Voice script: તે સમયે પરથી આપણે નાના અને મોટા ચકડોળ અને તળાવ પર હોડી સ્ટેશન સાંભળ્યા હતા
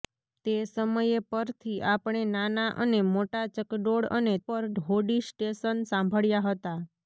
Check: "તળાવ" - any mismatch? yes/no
yes